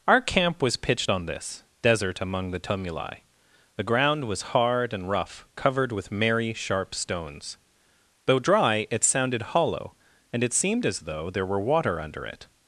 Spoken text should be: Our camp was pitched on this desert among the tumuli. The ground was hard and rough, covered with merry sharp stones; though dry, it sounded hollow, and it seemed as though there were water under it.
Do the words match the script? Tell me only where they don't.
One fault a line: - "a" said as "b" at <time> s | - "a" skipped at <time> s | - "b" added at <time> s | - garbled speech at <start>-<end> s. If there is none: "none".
none